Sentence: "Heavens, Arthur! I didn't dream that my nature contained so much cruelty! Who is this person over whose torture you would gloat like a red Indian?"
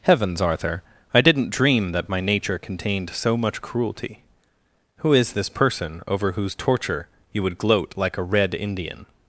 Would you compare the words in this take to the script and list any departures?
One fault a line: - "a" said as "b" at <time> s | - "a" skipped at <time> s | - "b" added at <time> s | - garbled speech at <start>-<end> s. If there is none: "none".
none